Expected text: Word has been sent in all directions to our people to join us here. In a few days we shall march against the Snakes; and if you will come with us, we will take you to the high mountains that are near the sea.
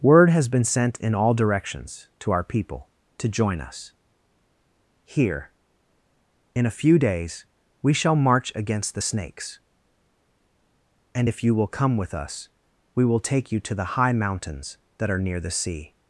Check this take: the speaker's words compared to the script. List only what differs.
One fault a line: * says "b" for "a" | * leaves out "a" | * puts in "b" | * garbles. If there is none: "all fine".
all fine